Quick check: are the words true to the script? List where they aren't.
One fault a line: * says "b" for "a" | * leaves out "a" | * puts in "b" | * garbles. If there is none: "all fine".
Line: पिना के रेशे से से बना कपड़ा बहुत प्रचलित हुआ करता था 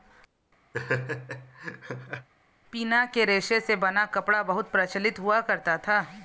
* leaves out "से"